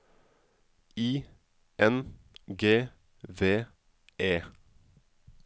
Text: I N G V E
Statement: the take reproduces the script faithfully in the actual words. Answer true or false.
true